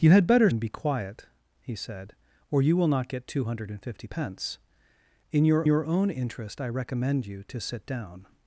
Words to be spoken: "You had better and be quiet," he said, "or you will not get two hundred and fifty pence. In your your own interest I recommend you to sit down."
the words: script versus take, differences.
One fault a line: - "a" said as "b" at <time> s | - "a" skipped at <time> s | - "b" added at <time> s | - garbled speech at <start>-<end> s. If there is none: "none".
none